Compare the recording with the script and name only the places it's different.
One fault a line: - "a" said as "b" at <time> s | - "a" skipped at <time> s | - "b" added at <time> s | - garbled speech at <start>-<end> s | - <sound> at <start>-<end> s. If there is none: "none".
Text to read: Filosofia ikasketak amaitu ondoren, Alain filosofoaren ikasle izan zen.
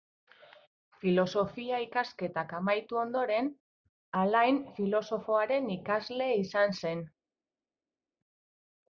none